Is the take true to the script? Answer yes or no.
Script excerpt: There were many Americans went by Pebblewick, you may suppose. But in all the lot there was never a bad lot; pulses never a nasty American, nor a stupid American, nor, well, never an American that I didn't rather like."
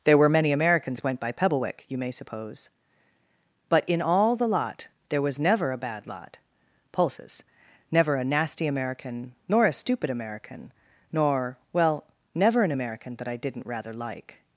yes